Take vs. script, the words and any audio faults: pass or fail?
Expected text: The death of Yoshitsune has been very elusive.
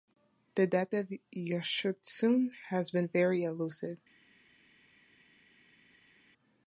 pass